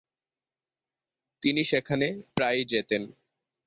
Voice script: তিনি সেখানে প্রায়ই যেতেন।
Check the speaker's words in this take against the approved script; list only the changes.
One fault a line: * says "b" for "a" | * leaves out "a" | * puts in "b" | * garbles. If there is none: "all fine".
all fine